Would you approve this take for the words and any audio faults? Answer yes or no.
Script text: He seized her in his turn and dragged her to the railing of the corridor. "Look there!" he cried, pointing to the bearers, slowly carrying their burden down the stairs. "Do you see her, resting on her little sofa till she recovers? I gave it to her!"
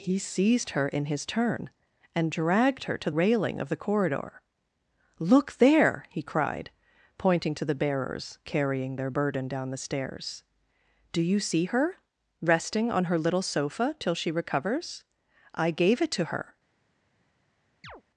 no